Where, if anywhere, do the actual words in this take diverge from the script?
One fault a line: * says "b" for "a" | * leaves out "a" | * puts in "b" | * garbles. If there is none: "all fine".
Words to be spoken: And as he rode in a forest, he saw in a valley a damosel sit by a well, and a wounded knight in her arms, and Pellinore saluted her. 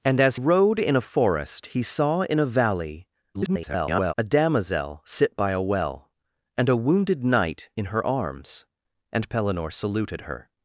* leaves out "he"
* garbles